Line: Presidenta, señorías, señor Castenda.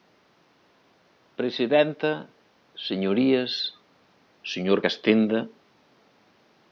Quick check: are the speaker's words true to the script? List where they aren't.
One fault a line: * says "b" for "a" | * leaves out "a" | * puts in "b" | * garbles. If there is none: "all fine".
all fine